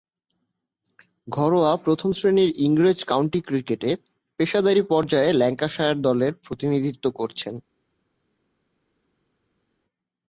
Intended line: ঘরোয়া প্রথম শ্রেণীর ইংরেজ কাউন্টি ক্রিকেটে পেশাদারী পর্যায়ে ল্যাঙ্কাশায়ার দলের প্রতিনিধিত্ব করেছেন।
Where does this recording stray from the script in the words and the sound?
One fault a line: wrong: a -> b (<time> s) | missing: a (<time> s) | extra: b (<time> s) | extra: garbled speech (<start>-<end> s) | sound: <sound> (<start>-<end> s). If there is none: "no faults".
no faults